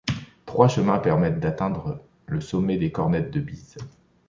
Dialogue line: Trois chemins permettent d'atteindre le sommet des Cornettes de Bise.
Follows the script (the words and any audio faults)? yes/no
yes